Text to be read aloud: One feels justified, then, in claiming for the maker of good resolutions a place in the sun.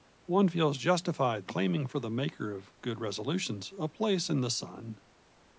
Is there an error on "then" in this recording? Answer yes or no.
yes